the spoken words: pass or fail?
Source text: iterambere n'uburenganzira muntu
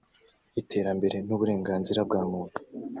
fail